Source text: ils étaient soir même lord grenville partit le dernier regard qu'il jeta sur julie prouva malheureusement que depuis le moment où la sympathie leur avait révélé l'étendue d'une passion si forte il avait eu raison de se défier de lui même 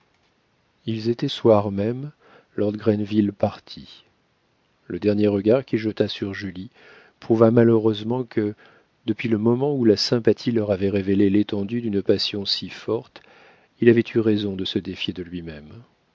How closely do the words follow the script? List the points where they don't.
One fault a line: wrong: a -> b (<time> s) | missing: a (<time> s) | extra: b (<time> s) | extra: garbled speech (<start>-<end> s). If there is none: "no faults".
no faults